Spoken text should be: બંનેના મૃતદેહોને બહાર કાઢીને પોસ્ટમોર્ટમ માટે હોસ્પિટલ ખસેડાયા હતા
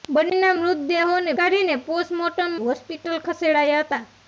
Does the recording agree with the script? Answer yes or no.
no